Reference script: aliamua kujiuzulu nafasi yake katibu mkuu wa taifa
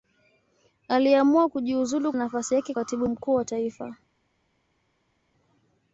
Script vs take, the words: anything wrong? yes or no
no